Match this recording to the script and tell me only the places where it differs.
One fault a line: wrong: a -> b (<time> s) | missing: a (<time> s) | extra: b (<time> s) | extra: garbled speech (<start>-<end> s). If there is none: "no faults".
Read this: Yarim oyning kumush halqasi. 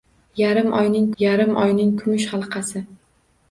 extra: yarim oyning (1.2 s)